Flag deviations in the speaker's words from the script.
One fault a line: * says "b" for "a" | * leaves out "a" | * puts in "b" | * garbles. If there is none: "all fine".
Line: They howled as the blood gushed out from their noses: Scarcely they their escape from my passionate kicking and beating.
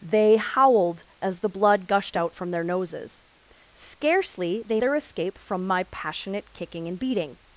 all fine